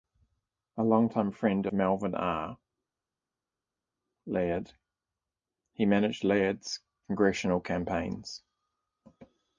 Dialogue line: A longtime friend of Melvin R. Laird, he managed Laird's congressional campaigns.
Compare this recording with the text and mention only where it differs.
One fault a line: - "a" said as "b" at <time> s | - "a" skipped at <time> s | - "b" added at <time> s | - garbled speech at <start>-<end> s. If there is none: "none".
- "of" skipped at 1.7 s